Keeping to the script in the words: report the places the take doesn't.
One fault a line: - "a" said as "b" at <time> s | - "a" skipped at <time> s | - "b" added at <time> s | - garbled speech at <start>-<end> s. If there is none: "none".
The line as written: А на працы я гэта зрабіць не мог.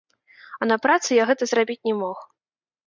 none